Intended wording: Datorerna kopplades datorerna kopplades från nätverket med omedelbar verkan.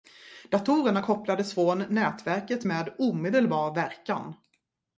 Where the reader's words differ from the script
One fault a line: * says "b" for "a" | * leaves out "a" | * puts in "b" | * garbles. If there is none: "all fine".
* leaves out "datorerna kopplades"